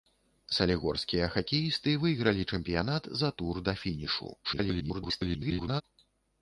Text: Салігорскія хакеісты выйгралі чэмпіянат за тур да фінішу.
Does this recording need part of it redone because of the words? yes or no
yes